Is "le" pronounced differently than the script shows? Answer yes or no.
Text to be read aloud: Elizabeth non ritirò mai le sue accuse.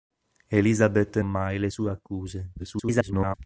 no